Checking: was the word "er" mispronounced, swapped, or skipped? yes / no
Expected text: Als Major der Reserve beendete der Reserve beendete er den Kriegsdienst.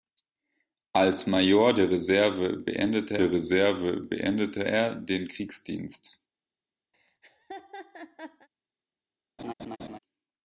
no